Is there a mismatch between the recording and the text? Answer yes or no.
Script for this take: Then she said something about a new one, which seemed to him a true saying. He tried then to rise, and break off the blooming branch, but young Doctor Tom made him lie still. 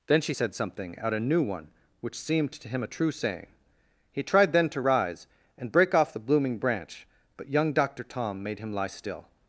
yes